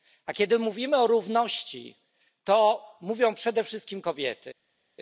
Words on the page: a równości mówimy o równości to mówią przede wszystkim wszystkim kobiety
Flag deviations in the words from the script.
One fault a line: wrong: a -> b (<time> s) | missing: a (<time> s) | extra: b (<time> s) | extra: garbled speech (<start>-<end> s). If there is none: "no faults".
wrong: równości -> kiedy (0.3 s)
missing: wszystkim (4.0 s)